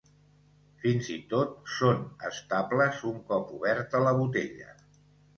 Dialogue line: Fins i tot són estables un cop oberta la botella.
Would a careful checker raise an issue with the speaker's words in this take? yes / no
no